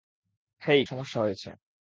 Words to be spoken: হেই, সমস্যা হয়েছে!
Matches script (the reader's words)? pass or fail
pass